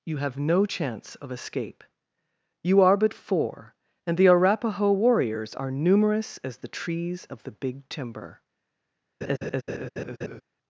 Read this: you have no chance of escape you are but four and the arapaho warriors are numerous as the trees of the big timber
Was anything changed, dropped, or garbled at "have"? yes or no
no